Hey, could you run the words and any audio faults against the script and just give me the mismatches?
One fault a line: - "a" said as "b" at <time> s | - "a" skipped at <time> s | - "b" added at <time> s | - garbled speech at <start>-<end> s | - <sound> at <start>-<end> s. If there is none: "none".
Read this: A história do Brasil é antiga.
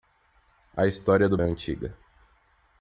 - "Brasil" skipped at 1.4 s